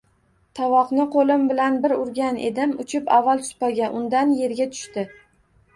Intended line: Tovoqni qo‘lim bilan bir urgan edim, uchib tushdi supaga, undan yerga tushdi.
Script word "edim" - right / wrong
right